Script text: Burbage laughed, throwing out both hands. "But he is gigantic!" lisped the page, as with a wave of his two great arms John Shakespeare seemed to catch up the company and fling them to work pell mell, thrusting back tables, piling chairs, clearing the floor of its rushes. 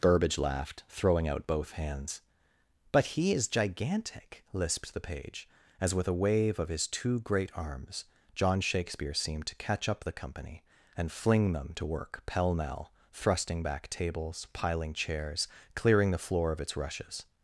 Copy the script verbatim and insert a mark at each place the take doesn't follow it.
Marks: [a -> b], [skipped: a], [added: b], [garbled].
Burbage laughed, throwing out both hands. "But he is gigantic!" lisped the page, as with a wave of his two great arms John Shakespeare seemed to catch up the company and fling them to work pell mell, thrusting back tables, piling chairs, clearing the floor of its rushes.